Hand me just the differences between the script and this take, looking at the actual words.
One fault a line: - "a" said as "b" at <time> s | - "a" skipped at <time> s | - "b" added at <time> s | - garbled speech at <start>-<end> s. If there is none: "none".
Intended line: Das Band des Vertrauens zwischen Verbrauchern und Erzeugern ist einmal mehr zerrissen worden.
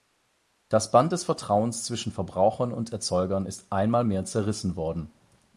none